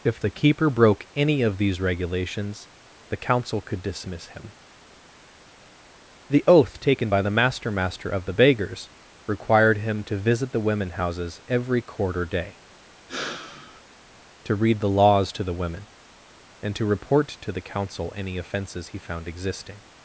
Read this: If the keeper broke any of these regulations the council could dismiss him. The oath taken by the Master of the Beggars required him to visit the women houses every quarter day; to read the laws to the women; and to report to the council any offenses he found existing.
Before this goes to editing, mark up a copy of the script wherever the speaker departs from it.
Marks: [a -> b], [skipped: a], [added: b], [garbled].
If the keeper broke any of these regulations the council could dismiss him. The oath taken by the Master [added: Master] of the Beggars required him to visit the women houses every quarter day; to read the laws to the women; and to report to the council any offenses he found existing.